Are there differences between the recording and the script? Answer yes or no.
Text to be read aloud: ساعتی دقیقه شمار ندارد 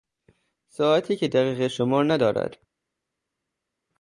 yes